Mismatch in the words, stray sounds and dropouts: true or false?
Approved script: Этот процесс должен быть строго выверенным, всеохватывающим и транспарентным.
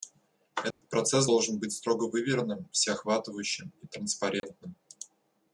true